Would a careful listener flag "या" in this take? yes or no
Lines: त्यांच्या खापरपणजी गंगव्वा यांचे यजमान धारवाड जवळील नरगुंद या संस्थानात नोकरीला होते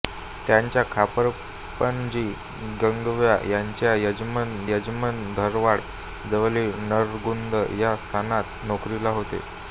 no